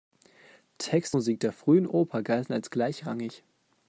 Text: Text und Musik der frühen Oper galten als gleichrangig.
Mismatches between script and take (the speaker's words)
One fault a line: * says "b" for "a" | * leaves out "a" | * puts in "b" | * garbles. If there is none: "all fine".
* leaves out "und"